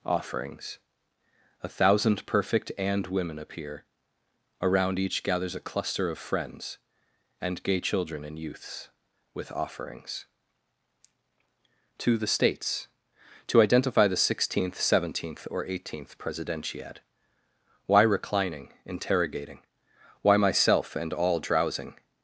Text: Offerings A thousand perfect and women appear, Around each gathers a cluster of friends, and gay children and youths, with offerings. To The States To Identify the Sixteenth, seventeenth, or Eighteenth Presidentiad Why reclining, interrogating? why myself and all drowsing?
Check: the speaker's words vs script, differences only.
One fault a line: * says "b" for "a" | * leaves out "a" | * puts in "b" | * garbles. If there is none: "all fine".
all fine